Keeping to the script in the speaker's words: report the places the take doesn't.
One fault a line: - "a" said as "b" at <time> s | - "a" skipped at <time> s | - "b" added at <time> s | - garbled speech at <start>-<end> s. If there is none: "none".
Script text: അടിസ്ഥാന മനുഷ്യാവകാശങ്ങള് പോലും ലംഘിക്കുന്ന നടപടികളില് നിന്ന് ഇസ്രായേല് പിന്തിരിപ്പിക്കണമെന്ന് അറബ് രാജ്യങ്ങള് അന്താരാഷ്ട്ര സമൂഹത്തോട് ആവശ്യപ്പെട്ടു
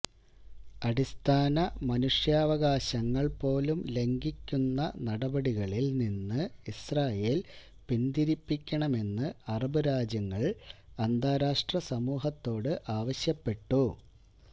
none